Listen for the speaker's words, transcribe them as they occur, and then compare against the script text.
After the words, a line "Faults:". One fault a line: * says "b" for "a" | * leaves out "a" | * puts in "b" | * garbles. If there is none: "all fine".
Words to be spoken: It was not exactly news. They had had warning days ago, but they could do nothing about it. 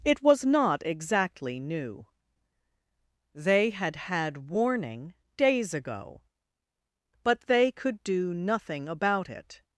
It was not exactly new. They had had warning days ago, but they could do nothing about it.
Faults:
* says "new" for "news"